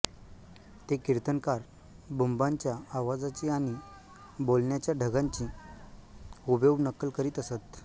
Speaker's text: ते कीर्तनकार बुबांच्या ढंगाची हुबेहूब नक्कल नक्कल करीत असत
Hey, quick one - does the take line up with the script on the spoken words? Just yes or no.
no